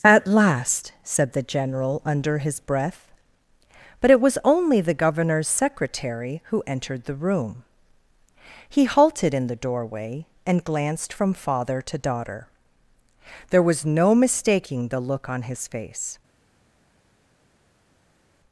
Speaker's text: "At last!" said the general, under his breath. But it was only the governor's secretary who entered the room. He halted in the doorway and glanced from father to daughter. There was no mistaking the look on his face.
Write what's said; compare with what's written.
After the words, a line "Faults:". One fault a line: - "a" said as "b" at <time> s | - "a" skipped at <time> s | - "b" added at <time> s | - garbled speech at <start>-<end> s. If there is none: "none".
"At last!" said the general, under his breath. But it was only the governor's secretary who entered the room. He halted in the doorway and glanced from father to daughter. There was no mistaking the look on his face.
Faults:
none